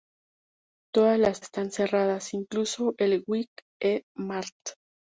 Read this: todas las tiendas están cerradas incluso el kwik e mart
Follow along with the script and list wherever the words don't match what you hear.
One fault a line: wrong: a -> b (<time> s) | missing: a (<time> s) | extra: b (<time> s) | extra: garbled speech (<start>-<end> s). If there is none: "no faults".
missing: tiendas (1.4 s)